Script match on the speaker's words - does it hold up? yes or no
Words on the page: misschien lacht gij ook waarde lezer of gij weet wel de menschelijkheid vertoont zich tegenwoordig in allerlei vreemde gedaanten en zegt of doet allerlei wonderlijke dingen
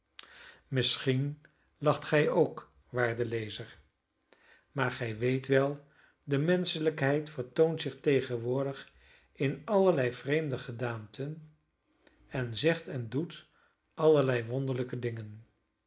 no